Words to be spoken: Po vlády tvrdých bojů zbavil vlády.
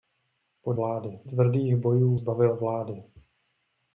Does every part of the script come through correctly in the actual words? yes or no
yes